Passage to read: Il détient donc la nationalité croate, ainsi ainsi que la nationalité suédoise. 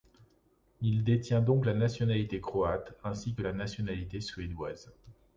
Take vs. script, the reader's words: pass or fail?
fail